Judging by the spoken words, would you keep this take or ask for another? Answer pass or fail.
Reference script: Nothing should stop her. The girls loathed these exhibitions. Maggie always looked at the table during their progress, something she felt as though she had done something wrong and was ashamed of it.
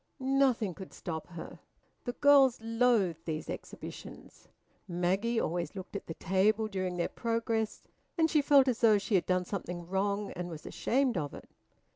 fail